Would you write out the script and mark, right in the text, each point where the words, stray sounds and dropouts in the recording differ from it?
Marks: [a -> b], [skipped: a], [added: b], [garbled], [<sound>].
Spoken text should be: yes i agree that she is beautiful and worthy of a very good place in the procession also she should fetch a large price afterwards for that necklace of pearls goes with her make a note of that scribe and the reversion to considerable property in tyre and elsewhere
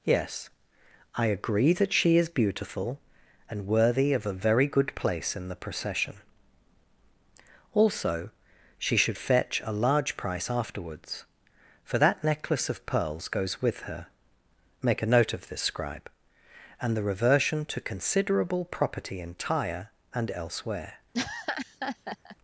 yes i agree that she is beautiful and worthy of a very good place in the procession also she should fetch a large price afterwards for that necklace of pearls goes with her make a note of [that -> this] scribe and the reversion to considerable property in tyre and elsewhere [laugh]